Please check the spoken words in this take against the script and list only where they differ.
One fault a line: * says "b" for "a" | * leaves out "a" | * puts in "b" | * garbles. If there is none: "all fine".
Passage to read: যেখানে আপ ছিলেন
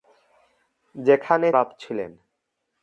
all fine